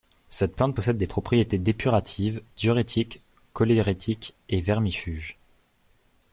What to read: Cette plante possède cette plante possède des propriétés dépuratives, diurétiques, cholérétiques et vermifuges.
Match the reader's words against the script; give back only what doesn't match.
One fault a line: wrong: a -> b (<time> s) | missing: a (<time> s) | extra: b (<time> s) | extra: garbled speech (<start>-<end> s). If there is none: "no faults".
missing: cette plante possède (1.0 s)